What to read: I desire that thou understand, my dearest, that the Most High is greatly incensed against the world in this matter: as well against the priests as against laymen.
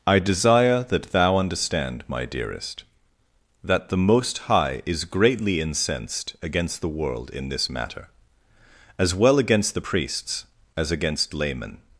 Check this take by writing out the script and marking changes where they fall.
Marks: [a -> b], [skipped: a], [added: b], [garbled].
I desire that thou understand, my dearest, that the Most High is greatly incensed against the world in this matter: as well against the priests as against laymen.